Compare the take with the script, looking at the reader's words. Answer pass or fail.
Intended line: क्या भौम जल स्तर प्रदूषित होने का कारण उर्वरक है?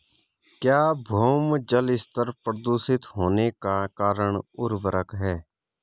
pass